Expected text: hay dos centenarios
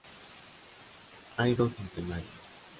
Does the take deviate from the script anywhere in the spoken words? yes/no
no